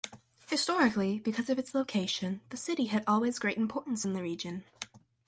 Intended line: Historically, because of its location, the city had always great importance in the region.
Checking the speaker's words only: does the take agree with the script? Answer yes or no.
yes